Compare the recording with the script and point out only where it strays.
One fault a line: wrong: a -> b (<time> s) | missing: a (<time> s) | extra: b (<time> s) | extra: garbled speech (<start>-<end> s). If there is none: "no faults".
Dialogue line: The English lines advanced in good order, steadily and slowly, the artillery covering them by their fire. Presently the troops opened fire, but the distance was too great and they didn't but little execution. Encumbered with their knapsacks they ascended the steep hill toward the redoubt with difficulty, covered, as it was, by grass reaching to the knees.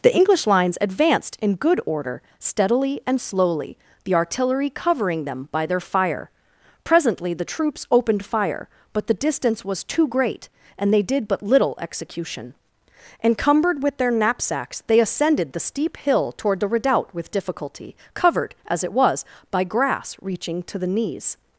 wrong: didn't -> did (11.0 s)